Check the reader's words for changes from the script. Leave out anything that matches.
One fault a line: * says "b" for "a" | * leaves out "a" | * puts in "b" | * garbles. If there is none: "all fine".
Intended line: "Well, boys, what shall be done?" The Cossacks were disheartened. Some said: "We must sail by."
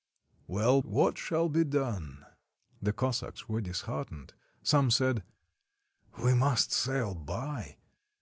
* leaves out "boys"